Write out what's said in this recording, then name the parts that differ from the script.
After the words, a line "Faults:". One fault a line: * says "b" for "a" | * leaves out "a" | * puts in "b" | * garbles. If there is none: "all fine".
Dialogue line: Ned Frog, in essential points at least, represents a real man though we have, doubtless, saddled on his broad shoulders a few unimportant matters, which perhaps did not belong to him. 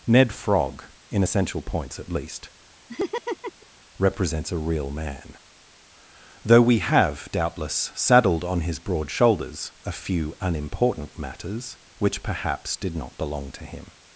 Ned Frog, in essential points at least, represents a real man though we have, doubtless, saddled on his broad shoulders a few unimportant matters, which perhaps did not belong to him.
Faults:
all fine